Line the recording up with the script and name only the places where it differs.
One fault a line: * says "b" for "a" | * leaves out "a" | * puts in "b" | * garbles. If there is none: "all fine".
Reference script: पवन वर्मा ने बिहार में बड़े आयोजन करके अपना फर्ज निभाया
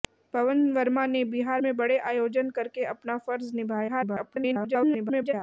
* garbles